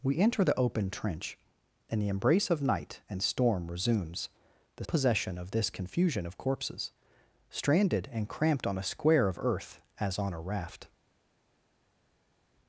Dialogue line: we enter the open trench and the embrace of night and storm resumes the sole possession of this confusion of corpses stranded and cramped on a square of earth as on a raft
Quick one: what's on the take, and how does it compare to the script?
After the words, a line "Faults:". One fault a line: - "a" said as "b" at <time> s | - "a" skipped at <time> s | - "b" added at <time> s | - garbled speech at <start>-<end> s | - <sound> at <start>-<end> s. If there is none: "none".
we enter the open trench and the embrace of night and storm resumes the possession of this confusion of corpses stranded and cramped on a square of earth as on a raft
Faults:
- "sole" skipped at 4.8 s